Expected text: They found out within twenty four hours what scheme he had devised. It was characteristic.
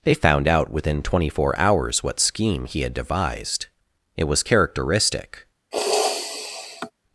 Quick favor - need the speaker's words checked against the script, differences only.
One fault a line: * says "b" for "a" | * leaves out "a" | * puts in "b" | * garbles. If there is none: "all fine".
all fine